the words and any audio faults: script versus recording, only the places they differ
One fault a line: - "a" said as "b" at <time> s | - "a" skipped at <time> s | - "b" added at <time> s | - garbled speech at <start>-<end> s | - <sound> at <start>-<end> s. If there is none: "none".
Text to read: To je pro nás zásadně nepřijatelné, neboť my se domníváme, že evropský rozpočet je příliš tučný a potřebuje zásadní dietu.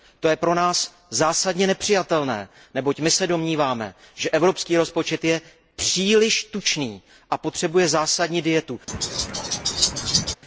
- laugh at 8.9-10.4 s